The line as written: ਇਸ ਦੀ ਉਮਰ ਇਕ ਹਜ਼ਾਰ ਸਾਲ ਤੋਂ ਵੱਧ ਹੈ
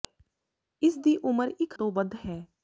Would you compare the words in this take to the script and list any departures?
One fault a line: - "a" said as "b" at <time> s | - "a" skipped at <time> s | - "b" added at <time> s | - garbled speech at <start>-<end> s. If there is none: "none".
- "ਹਜ਼ਾਰ ਸਾਲ" skipped at 1.7 s